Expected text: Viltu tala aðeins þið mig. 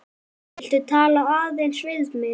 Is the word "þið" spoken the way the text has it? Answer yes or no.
no